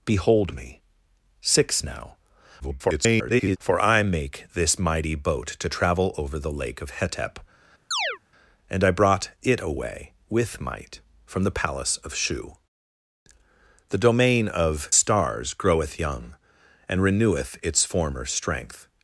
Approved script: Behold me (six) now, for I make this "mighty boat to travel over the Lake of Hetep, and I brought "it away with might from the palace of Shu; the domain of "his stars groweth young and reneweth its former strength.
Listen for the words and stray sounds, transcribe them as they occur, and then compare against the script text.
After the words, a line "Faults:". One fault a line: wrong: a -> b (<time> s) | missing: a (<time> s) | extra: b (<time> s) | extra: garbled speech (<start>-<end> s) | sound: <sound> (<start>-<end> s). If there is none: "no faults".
Behold me (six) now, [garbled] for I make this "mighty boat to travel over the Lake of Hetep, and I brought "it away with might from the palace of Shu; the domain of "stars groweth young and reneweth its former strength.
Faults:
extra: garbled speech (2.6-3.6 s)
sound: chirp (7.9-8.2 s)
missing: his (14.9 s)